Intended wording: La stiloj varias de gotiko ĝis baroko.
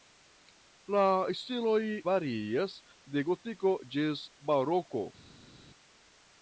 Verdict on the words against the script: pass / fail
pass